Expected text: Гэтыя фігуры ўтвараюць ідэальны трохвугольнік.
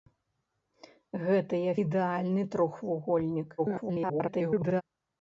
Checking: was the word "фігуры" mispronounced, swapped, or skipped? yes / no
yes